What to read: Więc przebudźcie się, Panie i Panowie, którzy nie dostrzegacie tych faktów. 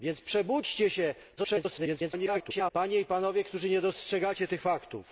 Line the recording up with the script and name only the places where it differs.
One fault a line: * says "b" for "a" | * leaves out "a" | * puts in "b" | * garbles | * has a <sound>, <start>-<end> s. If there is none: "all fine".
* garbles